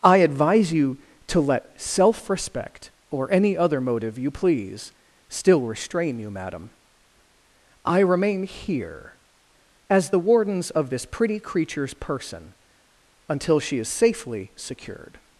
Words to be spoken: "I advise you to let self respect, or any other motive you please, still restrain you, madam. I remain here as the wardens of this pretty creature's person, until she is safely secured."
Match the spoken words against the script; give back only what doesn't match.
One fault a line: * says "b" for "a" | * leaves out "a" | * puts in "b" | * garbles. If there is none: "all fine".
all fine